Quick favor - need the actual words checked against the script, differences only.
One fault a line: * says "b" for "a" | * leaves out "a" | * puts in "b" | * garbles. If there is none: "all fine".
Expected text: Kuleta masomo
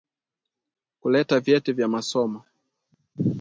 * puts in "vyeti vya"